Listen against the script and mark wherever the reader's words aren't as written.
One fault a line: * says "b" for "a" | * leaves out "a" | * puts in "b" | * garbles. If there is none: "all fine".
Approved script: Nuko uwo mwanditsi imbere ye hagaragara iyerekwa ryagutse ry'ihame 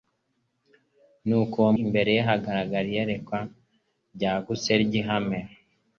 * leaves out "mwanditsi"